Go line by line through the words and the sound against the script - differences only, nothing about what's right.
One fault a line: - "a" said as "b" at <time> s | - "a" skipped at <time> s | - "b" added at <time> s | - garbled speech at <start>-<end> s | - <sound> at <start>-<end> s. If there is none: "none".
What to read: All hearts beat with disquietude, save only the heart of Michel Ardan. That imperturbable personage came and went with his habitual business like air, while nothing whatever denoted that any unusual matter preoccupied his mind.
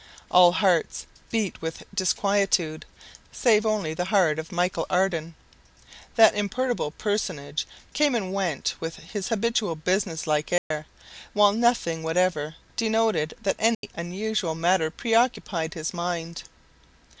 - dropout at 10.6-10.7 s
- dropout at 13.7-13.8 s